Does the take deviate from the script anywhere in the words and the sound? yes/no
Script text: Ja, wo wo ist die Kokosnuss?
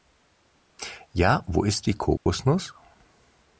yes